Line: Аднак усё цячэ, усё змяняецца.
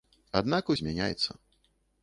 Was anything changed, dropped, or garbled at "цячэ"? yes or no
yes